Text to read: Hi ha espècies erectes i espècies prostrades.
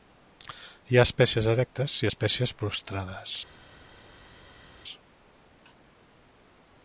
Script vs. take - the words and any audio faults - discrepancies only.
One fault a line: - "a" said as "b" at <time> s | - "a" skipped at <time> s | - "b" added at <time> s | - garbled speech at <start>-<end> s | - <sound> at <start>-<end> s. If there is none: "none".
none